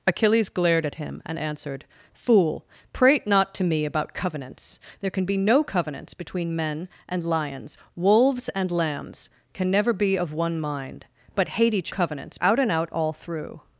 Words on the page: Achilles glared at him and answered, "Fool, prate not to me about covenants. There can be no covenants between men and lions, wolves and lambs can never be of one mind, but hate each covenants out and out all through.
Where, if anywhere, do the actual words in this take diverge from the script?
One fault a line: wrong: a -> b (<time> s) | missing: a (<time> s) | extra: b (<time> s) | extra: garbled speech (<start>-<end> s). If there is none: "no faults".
no faults